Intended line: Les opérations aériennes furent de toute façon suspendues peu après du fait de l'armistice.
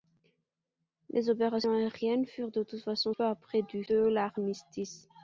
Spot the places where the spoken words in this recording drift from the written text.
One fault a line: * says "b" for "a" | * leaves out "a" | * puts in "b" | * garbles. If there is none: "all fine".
* leaves out "suspendues"
* leaves out "fait"